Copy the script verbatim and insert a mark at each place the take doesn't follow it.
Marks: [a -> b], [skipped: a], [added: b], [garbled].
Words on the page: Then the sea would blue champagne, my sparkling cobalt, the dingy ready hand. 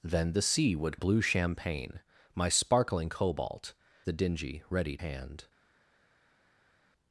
Then the sea would blue champagne, my sparkling cobalt, the dingy ready hand.